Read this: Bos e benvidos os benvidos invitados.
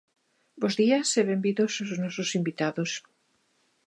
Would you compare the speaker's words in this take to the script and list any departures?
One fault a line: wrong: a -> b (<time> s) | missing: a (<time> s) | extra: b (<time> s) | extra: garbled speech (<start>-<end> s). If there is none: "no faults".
extra: días (0.8 s)
wrong: benvidos -> nosos (2.0 s)